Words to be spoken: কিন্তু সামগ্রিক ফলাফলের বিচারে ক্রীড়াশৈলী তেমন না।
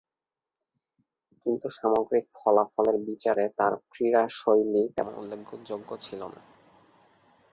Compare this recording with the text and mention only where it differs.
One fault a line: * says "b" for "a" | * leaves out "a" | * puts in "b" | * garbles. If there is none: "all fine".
* puts in "তার"
* puts in "উল্লেখযোগ্য ছিল"